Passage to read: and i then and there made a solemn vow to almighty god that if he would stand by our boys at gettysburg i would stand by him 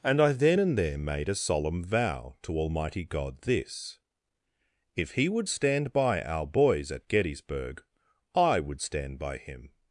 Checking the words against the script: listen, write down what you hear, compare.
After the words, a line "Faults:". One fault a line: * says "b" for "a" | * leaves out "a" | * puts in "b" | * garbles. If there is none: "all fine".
and i then and there made a solemn vow to almighty god this if he would stand by our boys at gettysburg i would stand by him
Faults:
* says "this" for "that"